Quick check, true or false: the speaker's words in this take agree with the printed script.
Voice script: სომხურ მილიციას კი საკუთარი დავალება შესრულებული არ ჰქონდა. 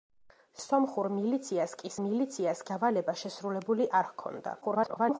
false